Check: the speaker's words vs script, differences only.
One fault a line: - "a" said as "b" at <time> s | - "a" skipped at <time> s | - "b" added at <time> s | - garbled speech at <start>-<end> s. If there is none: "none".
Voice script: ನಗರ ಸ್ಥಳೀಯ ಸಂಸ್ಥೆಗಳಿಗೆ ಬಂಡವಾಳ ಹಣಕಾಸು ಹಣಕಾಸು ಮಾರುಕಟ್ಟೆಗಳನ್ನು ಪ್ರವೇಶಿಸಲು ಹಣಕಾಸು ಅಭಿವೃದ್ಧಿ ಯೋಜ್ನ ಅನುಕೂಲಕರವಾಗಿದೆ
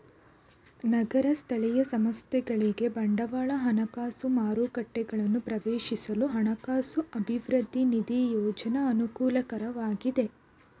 - "ಹಣಕಾಸು" skipped at 4.3 s
- "ನಿಧಿ" added at 7.9 s